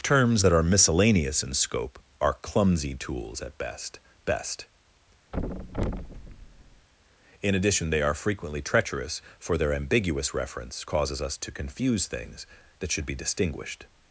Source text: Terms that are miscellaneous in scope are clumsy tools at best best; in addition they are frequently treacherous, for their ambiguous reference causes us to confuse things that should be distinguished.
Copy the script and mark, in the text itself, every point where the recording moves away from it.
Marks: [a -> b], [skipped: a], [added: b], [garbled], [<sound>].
Terms that are miscellaneous in scope are clumsy tools at best best; [thud] in addition they are frequently treacherous, for their ambiguous reference causes us to confuse things that should be distinguished.